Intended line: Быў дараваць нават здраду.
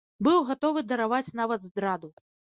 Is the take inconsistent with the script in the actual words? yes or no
yes